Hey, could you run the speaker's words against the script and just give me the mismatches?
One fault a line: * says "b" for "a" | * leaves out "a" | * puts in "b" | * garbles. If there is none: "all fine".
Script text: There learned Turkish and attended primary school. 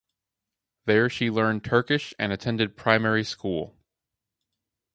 * puts in "she"